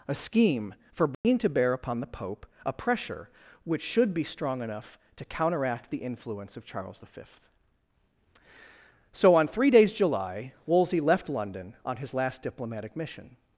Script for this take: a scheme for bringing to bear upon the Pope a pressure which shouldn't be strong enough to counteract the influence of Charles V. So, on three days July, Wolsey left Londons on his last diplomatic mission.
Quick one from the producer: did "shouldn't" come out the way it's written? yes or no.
no